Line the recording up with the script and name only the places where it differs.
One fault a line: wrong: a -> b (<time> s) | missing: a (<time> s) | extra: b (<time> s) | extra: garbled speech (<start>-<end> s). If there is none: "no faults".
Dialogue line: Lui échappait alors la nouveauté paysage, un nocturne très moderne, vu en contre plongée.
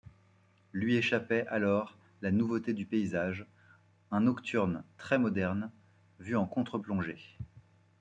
extra: du (2.7 s)